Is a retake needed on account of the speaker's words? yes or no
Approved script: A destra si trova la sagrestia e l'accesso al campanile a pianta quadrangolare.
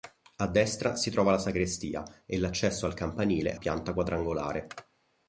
yes